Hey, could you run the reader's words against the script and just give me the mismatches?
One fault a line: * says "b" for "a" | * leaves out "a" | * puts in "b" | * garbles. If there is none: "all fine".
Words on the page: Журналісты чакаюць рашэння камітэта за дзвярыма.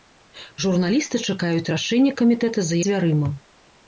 all fine